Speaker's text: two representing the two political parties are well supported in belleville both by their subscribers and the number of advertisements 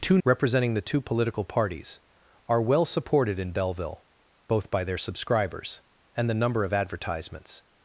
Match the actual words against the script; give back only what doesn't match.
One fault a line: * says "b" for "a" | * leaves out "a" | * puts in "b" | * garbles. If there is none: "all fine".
all fine